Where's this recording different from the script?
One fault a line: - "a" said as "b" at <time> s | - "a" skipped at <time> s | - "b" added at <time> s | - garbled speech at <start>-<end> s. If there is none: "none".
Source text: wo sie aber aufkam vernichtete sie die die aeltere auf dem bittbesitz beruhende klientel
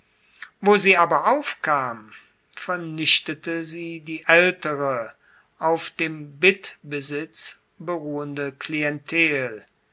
- "die" skipped at 4.2 s